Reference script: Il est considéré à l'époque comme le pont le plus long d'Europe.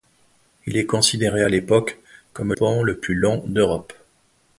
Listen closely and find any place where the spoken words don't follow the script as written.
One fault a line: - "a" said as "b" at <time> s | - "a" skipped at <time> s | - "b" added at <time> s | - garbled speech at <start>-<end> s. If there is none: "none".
- "le" skipped at 2.5 s